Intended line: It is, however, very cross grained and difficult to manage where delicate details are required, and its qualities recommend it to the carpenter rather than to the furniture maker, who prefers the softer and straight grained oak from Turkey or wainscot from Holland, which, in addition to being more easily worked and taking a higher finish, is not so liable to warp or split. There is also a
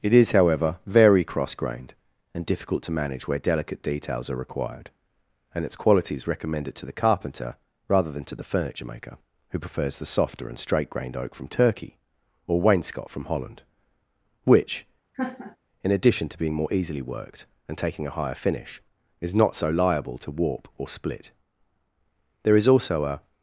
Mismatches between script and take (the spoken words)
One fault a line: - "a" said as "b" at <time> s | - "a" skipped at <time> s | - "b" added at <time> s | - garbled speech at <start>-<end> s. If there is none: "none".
none